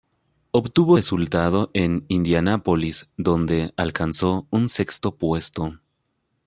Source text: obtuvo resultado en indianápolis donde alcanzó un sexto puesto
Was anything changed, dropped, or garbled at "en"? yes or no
no